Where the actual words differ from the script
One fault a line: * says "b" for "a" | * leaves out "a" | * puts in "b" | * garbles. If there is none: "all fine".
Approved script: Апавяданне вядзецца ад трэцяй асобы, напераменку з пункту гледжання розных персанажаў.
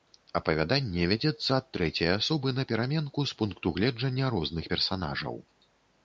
all fine